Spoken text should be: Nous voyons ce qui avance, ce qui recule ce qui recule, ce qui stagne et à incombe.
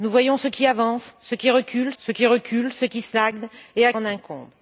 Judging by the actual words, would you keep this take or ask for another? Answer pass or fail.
pass